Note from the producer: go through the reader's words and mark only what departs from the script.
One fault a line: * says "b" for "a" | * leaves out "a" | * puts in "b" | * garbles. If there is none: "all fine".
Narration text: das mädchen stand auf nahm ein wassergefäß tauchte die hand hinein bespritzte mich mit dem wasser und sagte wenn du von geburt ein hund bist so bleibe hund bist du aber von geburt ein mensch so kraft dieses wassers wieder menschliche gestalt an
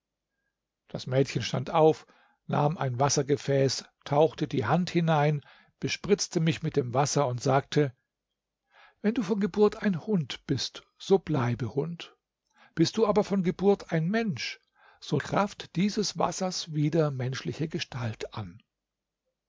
all fine